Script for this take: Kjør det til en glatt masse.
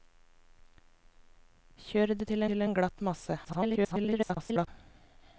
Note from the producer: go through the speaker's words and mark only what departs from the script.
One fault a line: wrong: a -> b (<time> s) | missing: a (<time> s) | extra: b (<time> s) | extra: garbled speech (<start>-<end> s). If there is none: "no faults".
extra: til (2.5 s)
extra: garbled speech (3.4-4.7 s)